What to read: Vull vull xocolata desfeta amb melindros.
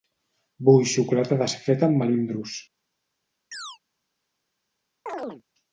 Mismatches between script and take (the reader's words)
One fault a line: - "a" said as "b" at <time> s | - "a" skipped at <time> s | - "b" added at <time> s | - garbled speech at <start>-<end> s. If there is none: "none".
- "vull" skipped at 0.9 s